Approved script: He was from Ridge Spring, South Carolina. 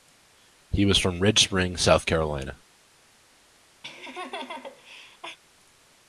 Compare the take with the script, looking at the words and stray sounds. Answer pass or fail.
fail